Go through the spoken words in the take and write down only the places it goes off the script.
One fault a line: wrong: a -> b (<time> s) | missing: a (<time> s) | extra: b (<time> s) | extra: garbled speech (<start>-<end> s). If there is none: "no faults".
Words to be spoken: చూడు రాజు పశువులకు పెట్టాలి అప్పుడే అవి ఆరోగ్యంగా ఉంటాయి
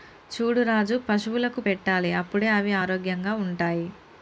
no faults